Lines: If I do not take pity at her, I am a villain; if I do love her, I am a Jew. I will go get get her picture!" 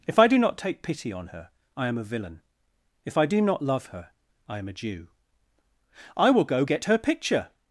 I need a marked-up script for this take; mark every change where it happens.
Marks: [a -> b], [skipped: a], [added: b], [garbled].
If I do not take pity [at -> on] her, I am a villain; if I do [added: not] love her, I am a Jew. I will go get [skipped: get] her picture!"